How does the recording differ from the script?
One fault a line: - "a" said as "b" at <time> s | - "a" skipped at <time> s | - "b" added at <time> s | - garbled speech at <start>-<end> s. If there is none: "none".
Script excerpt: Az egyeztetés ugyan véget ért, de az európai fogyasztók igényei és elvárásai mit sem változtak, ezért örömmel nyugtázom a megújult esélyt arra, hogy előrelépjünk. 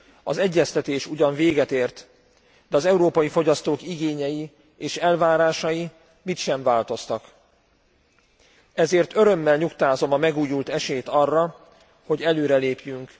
none